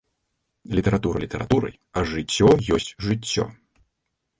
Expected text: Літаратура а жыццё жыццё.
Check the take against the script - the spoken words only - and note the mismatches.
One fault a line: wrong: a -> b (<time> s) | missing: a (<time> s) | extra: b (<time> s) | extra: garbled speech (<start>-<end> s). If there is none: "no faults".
extra: літаратурай (1.2 s)
extra: ёсць (2.8 s)